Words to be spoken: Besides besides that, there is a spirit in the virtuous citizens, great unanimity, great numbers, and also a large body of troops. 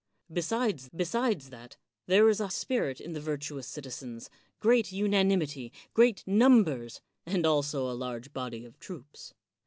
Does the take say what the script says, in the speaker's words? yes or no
yes